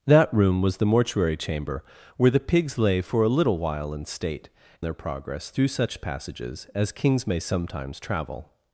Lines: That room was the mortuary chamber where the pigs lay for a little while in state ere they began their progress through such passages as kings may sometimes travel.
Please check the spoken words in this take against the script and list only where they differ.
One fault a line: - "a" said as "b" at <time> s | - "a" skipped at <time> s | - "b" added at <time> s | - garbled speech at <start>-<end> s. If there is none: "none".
- "ere they began" skipped at 4.5 s